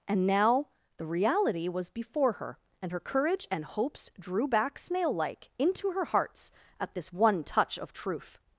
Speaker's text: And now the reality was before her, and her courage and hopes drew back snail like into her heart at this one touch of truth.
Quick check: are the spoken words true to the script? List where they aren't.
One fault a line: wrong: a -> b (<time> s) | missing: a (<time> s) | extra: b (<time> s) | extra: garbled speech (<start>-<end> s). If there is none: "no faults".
wrong: heart -> hearts (6.1 s)